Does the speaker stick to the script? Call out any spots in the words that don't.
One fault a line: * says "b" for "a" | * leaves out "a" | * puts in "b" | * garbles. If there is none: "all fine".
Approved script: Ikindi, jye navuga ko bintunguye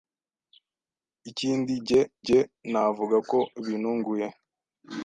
* puts in "jye"